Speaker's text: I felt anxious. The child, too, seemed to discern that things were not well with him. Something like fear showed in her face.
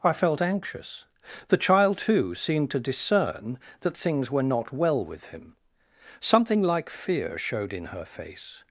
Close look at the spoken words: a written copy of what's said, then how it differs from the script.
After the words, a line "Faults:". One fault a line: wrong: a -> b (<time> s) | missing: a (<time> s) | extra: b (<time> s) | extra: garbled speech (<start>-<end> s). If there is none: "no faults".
I felt anxious. The child, too, seemed to discern that things were not well with him. Something like fear showed in her face.
Faults:
no faults